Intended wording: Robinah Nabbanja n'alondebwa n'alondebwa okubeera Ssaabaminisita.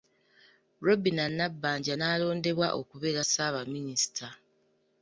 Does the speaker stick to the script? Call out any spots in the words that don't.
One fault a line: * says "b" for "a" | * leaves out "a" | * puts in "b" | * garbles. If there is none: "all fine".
* leaves out "n'alondebwa"